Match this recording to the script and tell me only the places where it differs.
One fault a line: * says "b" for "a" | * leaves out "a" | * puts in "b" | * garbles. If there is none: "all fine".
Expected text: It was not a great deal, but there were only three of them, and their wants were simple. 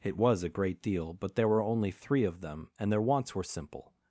* leaves out "not"